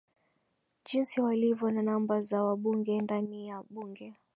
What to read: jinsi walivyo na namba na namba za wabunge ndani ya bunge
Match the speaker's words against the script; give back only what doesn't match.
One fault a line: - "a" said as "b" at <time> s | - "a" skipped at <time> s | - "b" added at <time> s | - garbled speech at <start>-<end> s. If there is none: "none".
- "na namba" skipped at 2.2 s